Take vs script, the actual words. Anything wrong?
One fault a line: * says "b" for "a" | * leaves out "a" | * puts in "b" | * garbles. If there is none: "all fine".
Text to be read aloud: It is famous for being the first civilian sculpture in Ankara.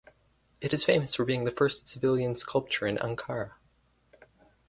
all fine